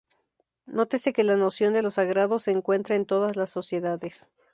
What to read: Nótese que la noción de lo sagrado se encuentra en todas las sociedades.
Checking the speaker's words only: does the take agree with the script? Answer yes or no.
yes